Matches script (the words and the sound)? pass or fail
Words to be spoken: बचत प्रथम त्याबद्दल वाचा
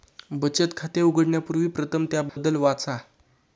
fail